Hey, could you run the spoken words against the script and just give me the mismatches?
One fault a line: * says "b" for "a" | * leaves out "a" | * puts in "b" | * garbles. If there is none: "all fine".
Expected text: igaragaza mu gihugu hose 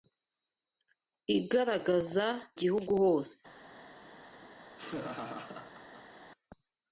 * leaves out "mu"